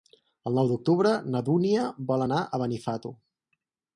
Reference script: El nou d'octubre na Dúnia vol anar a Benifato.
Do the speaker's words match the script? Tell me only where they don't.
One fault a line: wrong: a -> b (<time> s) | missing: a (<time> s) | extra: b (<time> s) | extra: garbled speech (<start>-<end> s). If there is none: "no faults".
no faults